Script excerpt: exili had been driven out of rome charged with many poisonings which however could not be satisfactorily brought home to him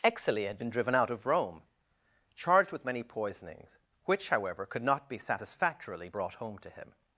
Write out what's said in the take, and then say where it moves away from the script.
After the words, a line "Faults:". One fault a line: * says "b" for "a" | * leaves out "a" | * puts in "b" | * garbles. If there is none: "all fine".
exili had been driven out of rome charged with many poisonings which however could not be satisfactorily brought home to him
Faults:
all fine